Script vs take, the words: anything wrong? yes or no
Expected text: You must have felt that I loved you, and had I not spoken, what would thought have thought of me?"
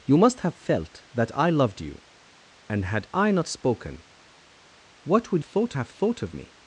no